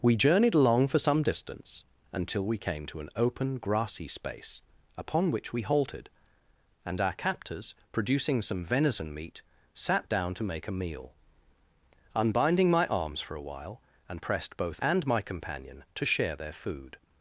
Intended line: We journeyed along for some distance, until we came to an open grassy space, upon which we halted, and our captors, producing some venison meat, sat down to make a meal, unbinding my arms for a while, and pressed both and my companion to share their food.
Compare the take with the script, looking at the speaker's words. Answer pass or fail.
pass